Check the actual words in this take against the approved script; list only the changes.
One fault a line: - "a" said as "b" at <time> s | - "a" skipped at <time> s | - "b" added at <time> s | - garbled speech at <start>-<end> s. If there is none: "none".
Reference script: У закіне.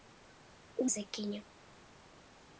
none